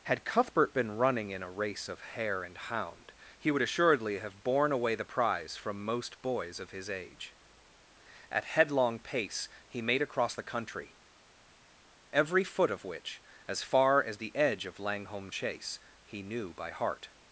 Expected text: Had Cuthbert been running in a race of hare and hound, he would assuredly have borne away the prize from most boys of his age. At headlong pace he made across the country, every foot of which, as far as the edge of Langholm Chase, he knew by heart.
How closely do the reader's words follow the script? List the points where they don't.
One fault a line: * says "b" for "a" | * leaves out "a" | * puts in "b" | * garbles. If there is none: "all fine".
all fine